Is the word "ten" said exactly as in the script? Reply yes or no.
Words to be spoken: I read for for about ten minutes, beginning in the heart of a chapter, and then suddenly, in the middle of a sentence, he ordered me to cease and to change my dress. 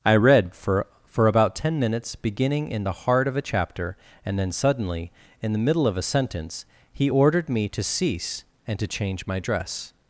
yes